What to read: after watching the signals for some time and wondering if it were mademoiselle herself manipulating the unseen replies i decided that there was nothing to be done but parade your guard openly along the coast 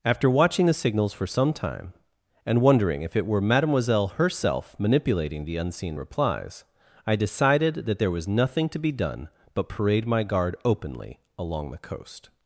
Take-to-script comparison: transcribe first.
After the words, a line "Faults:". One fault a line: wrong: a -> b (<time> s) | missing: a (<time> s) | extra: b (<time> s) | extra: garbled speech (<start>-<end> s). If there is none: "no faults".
after watching the signals for some time and wondering if it were mademoiselle herself manipulating the unseen replies i decided that there was nothing to be done but parade my guard openly along the coast
Faults:
wrong: your -> my (10.0 s)